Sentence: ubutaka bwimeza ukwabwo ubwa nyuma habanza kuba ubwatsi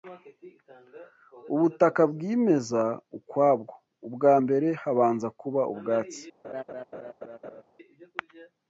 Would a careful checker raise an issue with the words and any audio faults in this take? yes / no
yes